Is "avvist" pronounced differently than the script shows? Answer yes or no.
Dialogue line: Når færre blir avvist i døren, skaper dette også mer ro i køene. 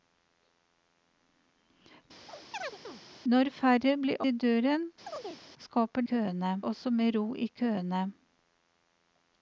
yes